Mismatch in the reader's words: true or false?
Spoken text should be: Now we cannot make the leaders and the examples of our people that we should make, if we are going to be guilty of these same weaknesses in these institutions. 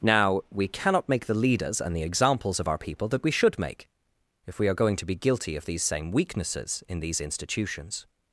false